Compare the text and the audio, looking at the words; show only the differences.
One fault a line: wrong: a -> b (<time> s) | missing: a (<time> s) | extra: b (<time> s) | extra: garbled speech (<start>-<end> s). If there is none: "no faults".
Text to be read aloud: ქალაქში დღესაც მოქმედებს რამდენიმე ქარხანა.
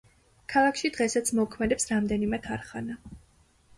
no faults